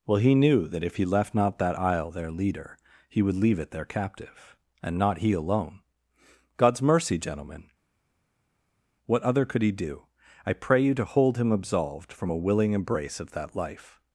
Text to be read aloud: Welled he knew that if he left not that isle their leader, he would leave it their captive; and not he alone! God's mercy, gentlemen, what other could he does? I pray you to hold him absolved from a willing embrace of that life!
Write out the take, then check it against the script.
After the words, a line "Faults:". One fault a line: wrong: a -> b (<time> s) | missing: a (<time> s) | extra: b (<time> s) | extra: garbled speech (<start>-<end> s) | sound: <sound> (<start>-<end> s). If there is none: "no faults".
Well he knew that if he left not that isle their leader, he would leave it their captive; and not he alone! God's mercy, gentlemen, what other could he do? I pray you to hold him absolved from a willing embrace of that life!
Faults:
wrong: Welled -> Well (0.1 s)
wrong: does -> do (9.7 s)